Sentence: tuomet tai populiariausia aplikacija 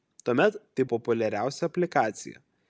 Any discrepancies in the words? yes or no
no